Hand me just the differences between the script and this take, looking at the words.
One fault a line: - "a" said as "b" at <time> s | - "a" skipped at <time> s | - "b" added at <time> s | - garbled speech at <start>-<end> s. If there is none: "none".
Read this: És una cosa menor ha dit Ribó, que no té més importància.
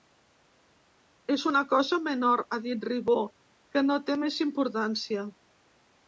none